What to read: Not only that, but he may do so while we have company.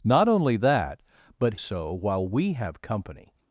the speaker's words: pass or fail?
fail